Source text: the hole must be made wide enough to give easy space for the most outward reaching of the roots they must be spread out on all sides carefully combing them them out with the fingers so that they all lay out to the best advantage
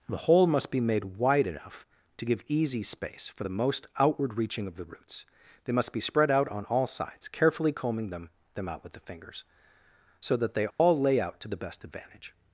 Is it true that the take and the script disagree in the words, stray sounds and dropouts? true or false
true